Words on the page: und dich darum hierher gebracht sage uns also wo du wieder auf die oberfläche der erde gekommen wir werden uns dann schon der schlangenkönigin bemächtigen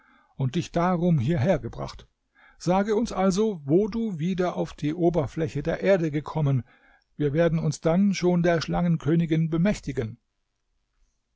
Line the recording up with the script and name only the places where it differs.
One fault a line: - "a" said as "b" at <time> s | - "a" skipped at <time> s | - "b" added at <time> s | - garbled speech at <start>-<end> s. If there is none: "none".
none